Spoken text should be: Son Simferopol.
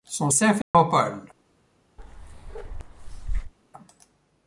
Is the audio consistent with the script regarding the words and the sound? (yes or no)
no